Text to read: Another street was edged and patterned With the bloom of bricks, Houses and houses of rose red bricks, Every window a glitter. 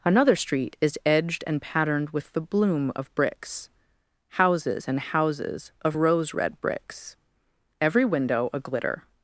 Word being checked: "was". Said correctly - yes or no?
no